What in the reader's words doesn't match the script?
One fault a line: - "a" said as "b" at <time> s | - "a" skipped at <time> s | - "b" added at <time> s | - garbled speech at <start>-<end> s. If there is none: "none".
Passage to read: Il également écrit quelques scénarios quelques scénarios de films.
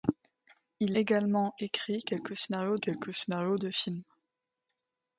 none